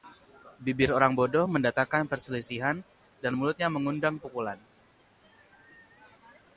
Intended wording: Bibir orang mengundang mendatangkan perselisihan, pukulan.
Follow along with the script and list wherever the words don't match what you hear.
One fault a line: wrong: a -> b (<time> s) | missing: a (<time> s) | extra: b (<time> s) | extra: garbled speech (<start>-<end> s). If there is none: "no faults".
wrong: mengundang -> bodoh (1.1 s)
extra: dan mulutnya mengundang (3.2 s)